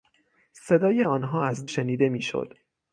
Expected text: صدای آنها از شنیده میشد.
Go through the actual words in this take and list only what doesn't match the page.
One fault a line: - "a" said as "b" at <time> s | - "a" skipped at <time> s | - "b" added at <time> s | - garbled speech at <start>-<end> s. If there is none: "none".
none